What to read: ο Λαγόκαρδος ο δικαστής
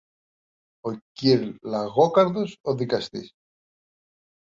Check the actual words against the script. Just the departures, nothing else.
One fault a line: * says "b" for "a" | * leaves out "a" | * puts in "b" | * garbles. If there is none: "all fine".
* puts in "κυρ"